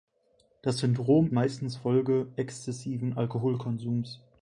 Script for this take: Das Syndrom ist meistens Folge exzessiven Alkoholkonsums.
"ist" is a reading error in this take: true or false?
true